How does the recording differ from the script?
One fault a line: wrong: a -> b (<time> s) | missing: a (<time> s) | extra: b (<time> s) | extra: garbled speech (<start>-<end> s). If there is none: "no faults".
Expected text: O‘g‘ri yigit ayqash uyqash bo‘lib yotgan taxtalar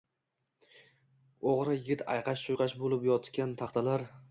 no faults